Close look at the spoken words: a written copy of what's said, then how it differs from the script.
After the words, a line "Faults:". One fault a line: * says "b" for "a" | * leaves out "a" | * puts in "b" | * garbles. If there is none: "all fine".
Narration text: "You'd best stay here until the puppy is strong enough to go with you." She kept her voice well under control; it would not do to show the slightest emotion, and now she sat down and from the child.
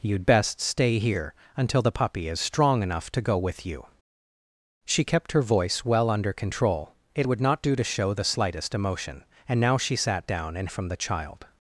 "You'd best stay here until the puppy is strong enough to go with you." She kept her voice well under control; it would not do to show the slightest emotion, and now she sat down and from the child.
Faults:
all fine